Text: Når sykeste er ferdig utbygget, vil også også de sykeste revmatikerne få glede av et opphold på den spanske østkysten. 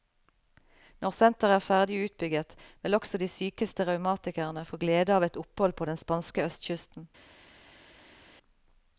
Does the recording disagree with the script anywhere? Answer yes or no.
yes